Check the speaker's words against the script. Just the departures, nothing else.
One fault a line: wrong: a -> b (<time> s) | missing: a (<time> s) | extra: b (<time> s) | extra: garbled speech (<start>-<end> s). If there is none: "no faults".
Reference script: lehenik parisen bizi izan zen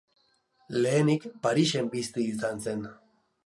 no faults